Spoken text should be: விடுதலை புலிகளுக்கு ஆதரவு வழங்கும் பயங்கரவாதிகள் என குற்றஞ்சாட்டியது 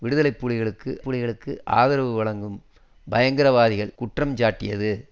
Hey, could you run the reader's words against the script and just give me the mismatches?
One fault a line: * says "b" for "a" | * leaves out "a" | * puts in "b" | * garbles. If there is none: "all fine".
* puts in "புலிகளுக்கு"
* leaves out "என"